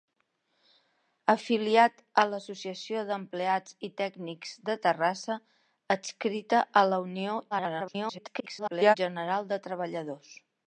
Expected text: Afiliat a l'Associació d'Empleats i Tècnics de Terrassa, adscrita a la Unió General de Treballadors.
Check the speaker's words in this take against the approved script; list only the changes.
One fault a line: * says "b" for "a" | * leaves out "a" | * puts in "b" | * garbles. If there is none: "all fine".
* garbles